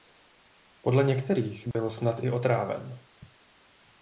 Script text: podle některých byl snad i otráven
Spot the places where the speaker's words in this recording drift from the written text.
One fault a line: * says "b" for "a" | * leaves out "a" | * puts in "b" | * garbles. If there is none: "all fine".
all fine